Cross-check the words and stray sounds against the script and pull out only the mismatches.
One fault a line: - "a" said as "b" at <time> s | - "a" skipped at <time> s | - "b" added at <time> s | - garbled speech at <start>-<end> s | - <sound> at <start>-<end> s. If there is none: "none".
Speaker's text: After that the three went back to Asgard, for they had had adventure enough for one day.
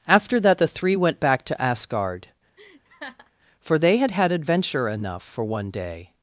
- laugh at 2.6-3.3 s